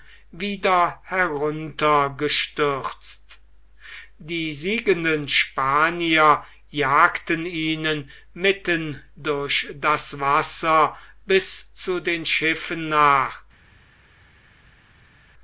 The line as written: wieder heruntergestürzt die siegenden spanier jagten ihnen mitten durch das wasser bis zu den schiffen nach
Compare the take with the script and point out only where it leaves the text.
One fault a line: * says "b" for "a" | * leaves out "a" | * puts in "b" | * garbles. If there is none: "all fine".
all fine